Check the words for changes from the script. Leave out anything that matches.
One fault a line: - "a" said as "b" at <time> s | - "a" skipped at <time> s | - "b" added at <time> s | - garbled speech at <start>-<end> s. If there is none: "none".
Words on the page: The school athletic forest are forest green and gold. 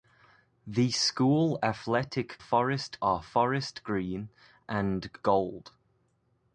none